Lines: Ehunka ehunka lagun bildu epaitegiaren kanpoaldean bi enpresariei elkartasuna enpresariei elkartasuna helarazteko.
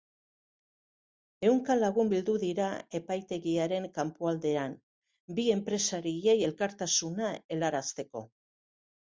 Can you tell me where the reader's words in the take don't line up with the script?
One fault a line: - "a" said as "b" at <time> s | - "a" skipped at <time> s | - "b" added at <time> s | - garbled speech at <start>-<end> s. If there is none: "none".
- "ehunka" skipped at 1.8 s
- "dira" added at 2.4 s
- "enpresariei elkartasuna" skipped at 7.3 s